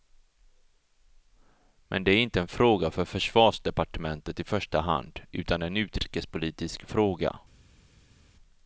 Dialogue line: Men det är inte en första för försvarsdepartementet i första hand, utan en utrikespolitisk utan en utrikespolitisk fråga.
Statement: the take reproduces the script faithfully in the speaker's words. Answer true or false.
false